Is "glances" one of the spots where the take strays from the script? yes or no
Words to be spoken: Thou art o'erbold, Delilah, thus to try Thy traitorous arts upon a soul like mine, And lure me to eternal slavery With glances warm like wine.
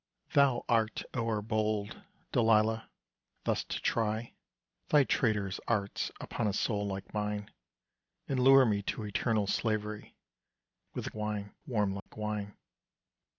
yes